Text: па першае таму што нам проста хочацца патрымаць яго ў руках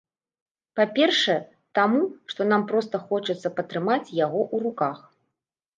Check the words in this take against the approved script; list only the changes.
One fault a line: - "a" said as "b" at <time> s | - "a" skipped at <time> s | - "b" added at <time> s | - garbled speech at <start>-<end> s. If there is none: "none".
none